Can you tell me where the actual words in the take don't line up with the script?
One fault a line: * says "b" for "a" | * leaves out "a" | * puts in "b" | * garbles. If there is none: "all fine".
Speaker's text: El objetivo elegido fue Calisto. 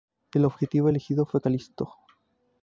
all fine